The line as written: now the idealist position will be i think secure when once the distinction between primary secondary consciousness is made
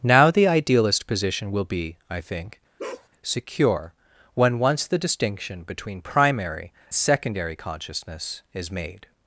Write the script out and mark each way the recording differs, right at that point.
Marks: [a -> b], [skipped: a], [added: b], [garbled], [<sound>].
now the idealist position will be i think [bark] secure when once the distinction between primary secondary consciousness is made